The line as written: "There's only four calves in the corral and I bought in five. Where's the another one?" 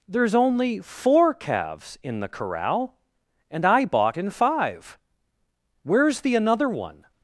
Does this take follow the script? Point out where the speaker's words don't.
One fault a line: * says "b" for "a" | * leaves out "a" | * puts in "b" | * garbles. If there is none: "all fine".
all fine